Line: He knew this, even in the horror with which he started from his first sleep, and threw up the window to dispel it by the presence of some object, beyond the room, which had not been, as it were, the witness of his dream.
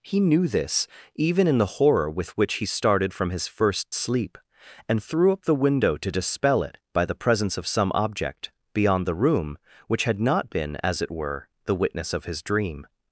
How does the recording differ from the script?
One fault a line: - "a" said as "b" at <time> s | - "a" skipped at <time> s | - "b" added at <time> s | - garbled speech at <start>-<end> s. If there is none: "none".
none